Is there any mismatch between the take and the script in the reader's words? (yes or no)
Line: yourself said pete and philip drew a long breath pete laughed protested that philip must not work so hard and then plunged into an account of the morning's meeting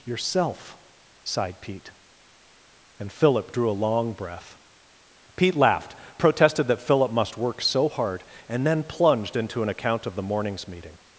yes